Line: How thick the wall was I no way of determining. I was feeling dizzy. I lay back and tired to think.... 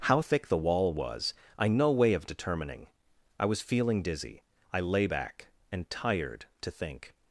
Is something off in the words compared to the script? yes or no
no